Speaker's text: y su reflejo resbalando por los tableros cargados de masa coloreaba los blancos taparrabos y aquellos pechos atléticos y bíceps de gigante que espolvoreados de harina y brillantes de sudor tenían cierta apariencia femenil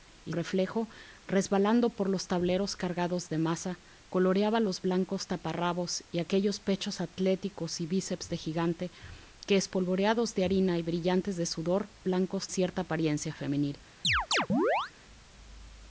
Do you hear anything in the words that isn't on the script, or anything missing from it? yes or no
yes